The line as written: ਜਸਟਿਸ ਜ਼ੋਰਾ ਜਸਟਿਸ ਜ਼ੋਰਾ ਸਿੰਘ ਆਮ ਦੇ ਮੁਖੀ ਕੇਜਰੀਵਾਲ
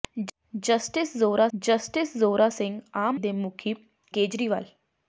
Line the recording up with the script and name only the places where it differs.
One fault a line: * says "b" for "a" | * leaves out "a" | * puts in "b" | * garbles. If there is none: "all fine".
all fine